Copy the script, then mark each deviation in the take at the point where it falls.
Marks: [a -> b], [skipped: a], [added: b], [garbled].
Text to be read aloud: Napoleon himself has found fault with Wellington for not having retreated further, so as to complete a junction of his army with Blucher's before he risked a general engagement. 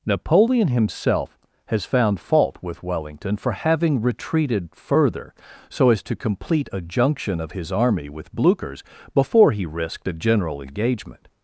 Napoleon himself has found fault with Wellington for [skipped: not] having retreated further, so as to complete a junction of his army with Blucher's before he risked a general engagement.